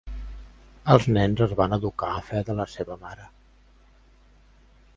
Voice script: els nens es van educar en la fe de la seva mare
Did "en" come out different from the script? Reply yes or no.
yes